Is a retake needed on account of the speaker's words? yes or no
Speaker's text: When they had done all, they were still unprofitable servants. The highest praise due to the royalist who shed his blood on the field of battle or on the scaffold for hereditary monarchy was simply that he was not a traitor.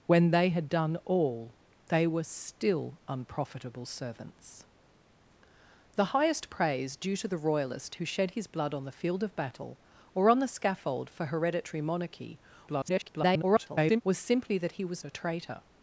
yes